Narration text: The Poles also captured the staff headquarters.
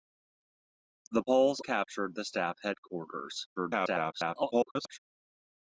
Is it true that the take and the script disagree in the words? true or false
true